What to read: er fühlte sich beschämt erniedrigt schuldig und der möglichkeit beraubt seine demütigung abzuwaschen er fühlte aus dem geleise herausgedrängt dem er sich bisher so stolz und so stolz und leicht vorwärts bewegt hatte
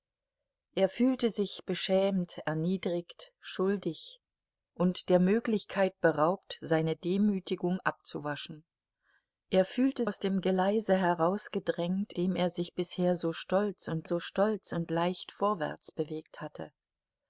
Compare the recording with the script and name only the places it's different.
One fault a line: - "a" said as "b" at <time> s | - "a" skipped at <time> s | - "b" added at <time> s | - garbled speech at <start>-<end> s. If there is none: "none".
none